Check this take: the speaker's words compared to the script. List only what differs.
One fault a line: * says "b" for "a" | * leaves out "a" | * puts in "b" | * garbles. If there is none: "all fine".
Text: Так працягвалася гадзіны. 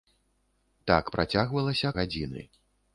all fine